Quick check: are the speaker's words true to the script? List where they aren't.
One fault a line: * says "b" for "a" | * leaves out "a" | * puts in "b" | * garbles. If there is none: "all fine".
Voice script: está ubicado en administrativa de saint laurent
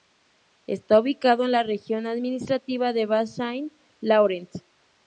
* puts in "la región"
* puts in "bas"